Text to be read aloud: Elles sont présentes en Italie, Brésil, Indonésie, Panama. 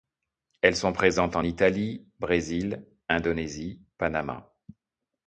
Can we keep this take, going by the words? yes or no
yes